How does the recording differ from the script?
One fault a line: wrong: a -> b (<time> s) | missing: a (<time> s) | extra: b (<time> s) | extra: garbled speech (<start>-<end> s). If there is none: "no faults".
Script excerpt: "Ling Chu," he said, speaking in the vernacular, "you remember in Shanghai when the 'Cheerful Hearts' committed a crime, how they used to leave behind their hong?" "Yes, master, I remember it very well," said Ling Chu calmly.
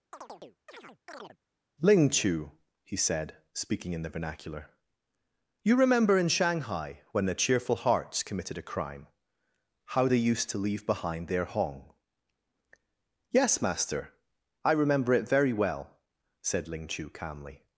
no faults